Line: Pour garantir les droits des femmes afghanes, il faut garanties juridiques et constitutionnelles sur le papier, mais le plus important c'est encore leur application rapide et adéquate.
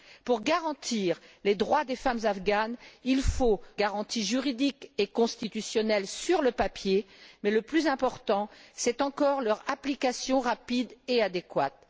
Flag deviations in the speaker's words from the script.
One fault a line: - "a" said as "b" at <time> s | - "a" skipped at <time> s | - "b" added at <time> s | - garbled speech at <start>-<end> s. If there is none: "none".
none